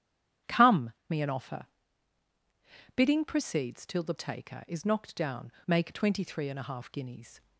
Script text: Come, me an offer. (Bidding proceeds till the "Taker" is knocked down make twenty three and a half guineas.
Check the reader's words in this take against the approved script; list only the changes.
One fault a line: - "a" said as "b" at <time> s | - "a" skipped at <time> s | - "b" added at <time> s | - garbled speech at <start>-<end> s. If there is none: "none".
none